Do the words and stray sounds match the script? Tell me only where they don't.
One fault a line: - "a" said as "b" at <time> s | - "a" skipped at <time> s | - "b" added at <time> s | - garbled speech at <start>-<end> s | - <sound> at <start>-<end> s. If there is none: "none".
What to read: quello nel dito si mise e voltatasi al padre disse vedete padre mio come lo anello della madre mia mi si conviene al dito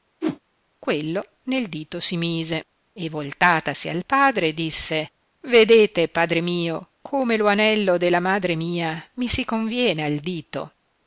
- whoosh at 0.2-0.4 s